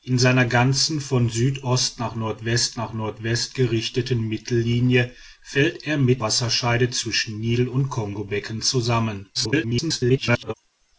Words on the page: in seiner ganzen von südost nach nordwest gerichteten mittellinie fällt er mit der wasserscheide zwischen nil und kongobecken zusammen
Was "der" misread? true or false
true